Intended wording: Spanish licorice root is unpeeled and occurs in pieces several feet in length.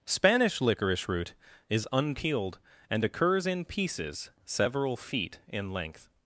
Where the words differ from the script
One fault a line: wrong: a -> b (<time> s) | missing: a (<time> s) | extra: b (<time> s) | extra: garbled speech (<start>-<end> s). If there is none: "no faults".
no faults